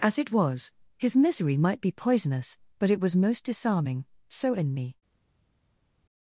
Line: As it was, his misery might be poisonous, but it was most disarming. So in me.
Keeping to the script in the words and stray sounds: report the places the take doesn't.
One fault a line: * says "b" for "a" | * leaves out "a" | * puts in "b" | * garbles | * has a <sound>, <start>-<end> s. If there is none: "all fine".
all fine